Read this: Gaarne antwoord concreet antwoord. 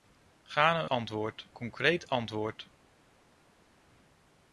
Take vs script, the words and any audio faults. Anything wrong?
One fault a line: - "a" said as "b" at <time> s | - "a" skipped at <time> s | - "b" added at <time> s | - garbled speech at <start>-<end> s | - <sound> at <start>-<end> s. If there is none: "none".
none